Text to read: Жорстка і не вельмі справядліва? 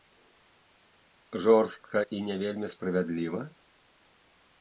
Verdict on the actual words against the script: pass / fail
pass